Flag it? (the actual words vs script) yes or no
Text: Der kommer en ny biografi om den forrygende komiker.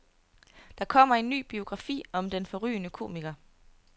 no